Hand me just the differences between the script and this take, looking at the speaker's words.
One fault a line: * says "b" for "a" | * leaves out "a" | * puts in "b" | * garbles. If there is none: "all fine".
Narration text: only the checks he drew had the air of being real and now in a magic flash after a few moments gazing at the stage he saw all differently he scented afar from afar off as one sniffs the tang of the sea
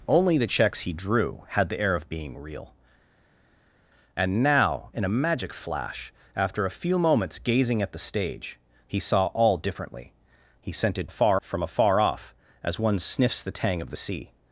all fine